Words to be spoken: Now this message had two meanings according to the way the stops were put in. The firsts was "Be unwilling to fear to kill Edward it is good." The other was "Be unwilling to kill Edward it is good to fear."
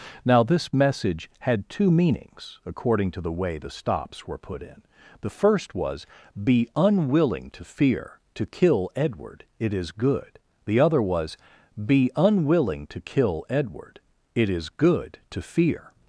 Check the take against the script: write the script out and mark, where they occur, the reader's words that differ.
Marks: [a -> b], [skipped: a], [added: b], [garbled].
Now this message had two meanings according to the way the stops were put in. The [firsts -> first] was "Be unwilling to fear to kill Edward it is good." The other was "Be unwilling to kill Edward it is good to fear."